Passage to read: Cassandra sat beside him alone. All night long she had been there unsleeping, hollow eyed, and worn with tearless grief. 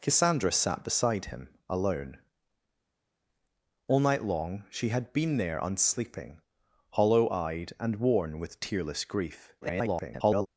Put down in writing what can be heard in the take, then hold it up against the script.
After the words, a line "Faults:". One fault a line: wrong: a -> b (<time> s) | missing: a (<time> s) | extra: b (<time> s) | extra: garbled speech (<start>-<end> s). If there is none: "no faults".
Cassandra sat beside him alone. All night long she had been there unsleeping, hollow eyed, and worn with tearless grief. [garbled]
Faults:
extra: garbled speech (9.6-10.5 s)